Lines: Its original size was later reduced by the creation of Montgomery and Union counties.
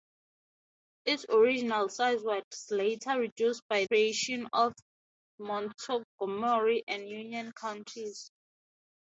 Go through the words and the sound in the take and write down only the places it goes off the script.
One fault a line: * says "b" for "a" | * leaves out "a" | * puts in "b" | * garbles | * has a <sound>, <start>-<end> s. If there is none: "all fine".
* leaves out "the"